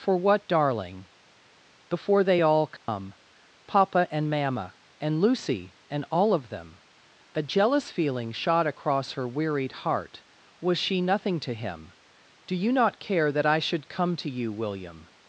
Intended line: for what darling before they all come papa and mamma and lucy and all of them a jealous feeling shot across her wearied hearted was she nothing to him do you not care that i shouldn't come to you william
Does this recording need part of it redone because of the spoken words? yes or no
yes